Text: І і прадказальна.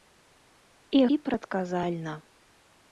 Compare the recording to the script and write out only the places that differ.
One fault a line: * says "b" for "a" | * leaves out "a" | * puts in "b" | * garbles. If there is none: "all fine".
all fine